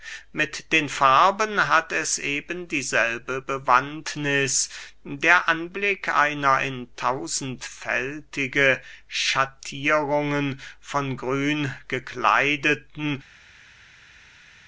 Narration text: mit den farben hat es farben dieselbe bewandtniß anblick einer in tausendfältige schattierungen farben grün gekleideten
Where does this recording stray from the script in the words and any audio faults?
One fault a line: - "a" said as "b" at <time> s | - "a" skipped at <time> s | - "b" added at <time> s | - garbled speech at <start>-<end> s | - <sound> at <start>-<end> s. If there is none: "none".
- "farben" said as "eben" at 2.2 s
- "der" added at 5.0 s
- "farben" said as "von" at 10.8 s